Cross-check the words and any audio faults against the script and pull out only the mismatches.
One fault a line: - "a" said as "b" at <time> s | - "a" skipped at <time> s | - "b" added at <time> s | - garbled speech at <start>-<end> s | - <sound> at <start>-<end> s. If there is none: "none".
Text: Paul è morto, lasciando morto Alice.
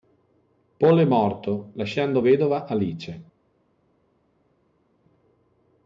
- "morto" said as "vedova" at 2.2 s